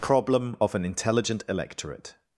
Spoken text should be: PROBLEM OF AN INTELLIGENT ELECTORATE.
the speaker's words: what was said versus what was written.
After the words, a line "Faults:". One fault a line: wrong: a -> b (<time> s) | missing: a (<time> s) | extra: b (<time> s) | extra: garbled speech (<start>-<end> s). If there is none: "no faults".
PROBLEM OF AN INTELLIGENT ELECTORATE.
Faults:
no faults